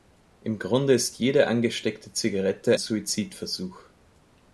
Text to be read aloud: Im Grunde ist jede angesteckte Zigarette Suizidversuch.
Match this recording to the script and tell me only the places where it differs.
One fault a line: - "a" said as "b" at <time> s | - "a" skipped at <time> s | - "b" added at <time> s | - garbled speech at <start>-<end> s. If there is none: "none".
none